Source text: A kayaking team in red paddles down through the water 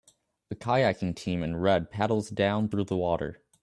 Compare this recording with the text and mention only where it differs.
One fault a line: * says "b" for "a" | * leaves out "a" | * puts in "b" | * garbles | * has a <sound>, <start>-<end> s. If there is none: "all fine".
all fine